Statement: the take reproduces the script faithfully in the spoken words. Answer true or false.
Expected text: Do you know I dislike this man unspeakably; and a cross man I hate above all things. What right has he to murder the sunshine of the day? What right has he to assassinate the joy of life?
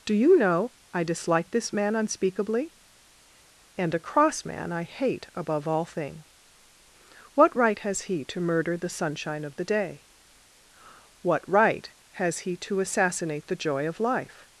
false